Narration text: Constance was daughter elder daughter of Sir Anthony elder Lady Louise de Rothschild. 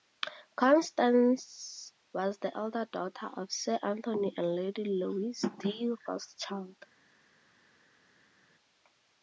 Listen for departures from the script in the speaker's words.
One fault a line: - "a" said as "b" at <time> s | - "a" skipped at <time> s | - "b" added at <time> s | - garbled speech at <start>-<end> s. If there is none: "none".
- "daughter" said as "the" at 2.4 s
- "elder" said as "and" at 4.4 s